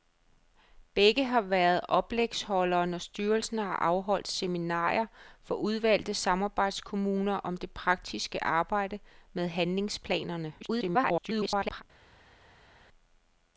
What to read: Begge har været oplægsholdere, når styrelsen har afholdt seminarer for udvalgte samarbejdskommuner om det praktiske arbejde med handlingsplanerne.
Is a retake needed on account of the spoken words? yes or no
yes